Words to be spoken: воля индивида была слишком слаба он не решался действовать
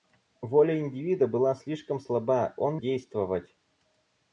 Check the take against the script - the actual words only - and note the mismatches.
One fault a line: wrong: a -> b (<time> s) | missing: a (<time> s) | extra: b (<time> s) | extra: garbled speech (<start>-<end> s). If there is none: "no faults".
missing: не решался (2.8 s)